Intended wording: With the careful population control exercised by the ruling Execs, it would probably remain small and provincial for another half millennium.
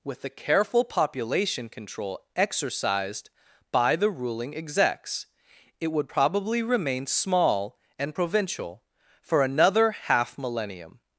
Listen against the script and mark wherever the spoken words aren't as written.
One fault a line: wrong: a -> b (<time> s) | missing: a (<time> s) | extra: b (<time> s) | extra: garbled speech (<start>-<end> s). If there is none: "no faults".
no faults